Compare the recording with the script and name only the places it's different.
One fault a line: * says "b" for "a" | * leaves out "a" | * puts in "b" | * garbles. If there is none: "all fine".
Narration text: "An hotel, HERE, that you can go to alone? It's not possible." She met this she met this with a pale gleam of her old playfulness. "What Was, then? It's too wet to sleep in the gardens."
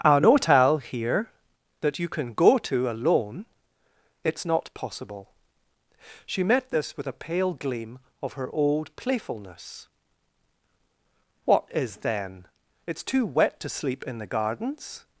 * leaves out "she met this"
* says "IS" for "Was"